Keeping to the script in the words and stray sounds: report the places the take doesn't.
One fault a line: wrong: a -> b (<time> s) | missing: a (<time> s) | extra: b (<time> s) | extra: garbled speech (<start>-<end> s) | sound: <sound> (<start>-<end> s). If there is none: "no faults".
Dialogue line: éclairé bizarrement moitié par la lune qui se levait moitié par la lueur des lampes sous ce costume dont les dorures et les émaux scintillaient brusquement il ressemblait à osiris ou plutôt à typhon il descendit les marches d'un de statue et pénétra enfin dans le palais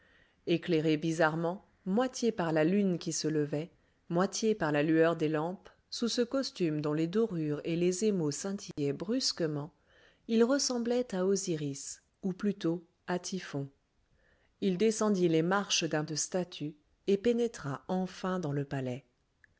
sound: dropout (8.7-8.8 s)